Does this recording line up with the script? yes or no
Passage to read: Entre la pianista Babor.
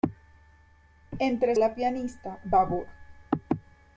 yes